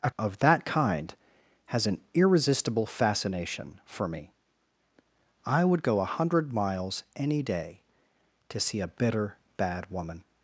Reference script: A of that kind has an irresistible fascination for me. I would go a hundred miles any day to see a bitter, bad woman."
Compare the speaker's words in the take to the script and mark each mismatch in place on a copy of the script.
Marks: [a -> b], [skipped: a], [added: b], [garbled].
A of that kind has an irresistible fascination for me. I would go a hundred miles any day to see a bitter, bad woman."